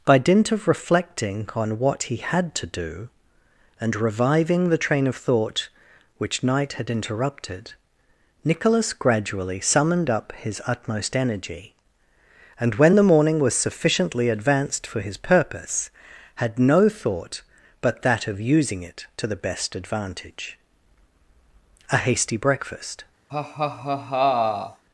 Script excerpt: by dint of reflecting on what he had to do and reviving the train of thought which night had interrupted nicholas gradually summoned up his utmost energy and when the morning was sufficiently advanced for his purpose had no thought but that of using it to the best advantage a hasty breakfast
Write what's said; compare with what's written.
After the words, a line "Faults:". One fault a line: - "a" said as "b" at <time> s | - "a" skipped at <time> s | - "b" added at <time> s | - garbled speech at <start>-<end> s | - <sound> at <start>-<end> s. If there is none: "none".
by dint of reflecting on what he had to do and reviving the train of thought which night had interrupted nicholas gradually summoned up his utmost energy and when the morning was sufficiently advanced for his purpose had no thought but that of using it to the best advantage a hasty breakfast
Faults:
- laugh at 23.3-24.8 s